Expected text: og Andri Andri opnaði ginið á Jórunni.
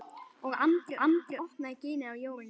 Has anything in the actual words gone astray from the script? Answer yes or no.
no